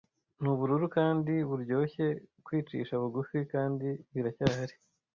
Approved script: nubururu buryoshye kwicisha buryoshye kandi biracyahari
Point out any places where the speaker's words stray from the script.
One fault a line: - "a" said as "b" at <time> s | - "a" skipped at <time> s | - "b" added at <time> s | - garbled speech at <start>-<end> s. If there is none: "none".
- "kandi" added at 1.0 s
- "buryoshye" said as "bugufi" at 3.0 s